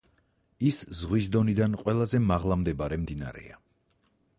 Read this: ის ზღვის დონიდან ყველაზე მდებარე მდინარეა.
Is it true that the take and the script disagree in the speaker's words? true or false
true